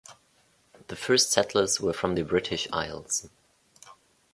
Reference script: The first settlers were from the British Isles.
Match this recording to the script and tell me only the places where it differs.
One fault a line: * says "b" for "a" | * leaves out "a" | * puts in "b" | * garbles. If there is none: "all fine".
all fine